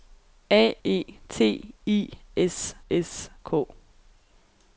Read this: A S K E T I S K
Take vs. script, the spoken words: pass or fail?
fail